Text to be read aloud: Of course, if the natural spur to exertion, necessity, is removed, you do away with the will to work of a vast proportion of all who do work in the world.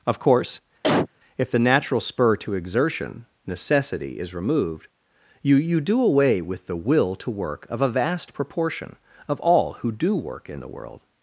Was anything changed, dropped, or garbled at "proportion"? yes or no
no